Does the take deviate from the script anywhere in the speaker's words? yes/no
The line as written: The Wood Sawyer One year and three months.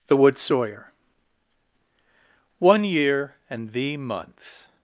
yes